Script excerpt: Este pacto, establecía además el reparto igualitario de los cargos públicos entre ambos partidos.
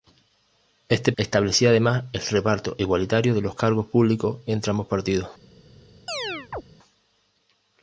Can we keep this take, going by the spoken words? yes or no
no